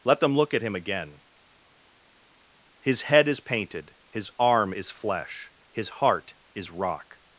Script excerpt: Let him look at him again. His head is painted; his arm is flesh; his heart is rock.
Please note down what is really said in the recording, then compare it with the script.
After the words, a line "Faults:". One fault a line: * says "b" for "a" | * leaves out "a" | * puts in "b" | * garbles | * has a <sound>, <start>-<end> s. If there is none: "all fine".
Let them look at him again. His head is painted; his arm is flesh; his heart is rock.
Faults:
* says "them" for "him"